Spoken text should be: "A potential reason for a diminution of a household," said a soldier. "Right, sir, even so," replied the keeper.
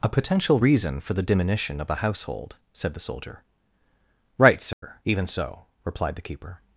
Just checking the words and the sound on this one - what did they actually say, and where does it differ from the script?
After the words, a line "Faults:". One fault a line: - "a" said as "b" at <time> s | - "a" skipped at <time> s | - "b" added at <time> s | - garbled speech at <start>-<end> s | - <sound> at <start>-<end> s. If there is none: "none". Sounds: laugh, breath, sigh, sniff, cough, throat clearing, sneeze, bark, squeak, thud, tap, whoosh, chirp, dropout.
"A potential reason for the diminution of a household," said the soldier. "Right, sir, even so," replied the keeper.
Faults:
- "a" said as "the" at 1.1 s
- "a" said as "the" at 2.9 s
- dropout at 4.7-4.8 s